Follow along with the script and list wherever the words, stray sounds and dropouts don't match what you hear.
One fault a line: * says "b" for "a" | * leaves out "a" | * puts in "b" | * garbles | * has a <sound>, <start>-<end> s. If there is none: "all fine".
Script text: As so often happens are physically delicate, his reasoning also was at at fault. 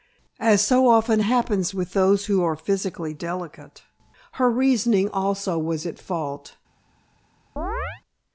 * puts in "with those who"
* says "her" for "his"
* leaves out "at"
* has a chirp, 7.6-8.0 s